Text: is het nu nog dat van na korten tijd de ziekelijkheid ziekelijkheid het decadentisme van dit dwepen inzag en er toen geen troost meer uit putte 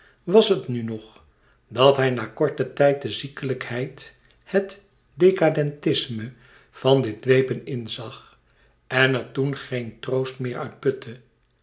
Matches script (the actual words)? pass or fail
fail